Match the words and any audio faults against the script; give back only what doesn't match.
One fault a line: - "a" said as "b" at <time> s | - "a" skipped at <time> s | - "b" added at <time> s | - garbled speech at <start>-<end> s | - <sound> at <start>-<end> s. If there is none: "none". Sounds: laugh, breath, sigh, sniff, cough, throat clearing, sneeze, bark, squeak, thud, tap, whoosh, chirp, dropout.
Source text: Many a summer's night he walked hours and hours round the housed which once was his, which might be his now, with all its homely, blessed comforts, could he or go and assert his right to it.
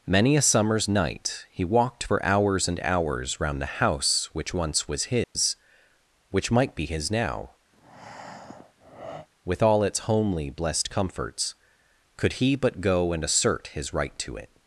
- "for" added at 2.0 s
- "housed" said as "house" at 3.8 s
- dropout at 5.2-5.4 s
- breath at 7.7-9.3 s
- "or" said as "but" at 12.6 s